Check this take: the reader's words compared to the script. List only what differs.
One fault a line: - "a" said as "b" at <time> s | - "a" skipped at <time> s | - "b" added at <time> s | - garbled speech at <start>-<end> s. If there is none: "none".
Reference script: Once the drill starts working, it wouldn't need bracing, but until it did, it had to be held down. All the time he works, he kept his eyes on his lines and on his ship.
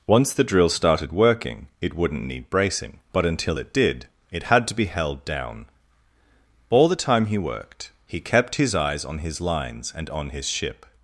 - "starts" said as "started" at 0.7 s
- "works" said as "worked" at 7.4 s